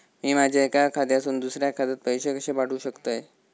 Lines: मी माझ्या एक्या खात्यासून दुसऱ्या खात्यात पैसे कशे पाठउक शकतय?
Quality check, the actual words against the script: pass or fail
pass